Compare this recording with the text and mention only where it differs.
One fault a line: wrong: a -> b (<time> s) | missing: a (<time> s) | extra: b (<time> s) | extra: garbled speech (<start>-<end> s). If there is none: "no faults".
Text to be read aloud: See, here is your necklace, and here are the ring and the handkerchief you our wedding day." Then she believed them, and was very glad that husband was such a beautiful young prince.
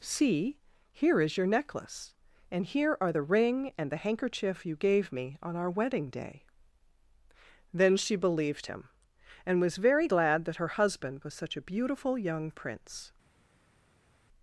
extra: gave me on (4.7 s)
wrong: them -> him (8.6 s)
extra: her (10.6 s)